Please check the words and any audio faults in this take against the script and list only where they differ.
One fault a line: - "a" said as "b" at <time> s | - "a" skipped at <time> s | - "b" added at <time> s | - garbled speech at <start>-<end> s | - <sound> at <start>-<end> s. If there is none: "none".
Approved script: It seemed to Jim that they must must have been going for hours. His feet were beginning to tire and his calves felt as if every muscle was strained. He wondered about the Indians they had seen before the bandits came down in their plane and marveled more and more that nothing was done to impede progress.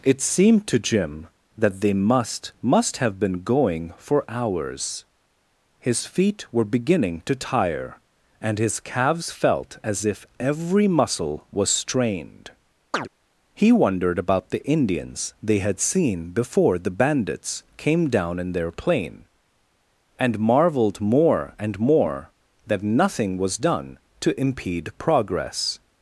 - chirp at 12.9-13.1 s